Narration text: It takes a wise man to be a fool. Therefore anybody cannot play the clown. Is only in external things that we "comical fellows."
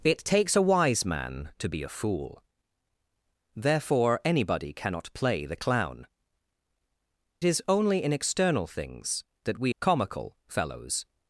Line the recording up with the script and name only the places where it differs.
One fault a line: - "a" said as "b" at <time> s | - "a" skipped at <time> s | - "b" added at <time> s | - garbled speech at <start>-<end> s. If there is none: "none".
none